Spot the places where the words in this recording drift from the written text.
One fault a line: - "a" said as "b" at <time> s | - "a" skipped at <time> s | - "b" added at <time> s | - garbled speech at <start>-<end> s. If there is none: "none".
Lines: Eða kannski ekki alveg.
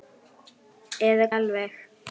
- "kannski ekki" skipped at 1.3 s